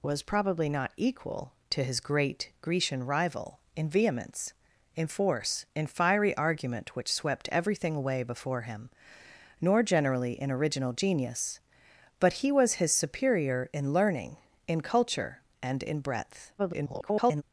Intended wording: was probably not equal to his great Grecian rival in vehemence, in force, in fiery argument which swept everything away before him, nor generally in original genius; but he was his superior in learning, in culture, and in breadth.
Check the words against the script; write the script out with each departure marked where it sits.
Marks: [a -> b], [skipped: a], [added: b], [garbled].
was probably not equal to his great Grecian rival in vehemence, in force, in fiery argument which swept everything away before him, nor generally in original genius; but he was his superior in learning, in culture, and in breadth. [garbled]